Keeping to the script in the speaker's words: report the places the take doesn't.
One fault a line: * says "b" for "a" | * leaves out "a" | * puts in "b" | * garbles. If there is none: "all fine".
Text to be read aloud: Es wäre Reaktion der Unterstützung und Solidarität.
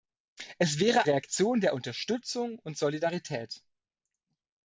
all fine